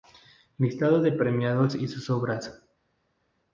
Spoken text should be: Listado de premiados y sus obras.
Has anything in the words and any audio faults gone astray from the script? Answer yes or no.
no